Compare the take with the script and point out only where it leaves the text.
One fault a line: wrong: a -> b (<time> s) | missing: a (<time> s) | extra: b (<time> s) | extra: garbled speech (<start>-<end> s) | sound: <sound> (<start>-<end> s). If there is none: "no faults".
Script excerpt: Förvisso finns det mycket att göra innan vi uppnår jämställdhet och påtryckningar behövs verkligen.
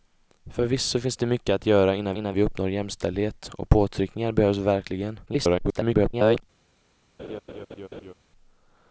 extra: innan (2.1 s)
extra: garbled speech (5.3-6.4 s)
sound: laugh (7.2-8.1 s)